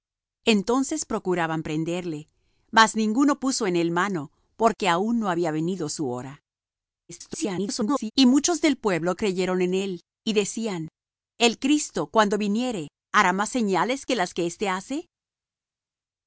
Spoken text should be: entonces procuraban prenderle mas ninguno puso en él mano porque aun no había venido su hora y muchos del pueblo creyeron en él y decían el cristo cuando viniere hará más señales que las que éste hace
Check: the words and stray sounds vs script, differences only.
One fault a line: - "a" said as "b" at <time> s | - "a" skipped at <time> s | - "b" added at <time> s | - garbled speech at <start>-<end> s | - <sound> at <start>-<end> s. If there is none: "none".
- garbled speech at 7.1-8.1 s